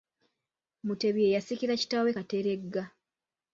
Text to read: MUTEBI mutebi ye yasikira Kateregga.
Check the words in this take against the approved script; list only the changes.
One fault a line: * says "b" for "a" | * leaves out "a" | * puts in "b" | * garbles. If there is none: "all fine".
* leaves out "mutebi"
* puts in "kitaawe"